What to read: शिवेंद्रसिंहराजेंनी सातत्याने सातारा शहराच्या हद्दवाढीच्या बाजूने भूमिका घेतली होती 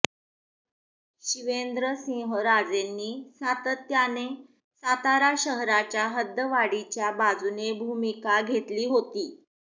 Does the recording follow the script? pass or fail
pass